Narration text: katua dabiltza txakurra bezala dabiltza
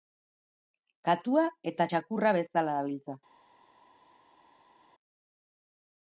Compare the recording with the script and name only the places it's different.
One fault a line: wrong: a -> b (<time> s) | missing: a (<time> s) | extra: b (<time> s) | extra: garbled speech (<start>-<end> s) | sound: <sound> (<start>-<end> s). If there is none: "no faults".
wrong: dabiltza -> eta (1.7 s)